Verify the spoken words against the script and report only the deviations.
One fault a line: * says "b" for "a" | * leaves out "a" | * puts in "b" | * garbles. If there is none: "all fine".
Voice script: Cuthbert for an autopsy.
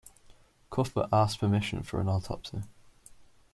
* puts in "asked permission"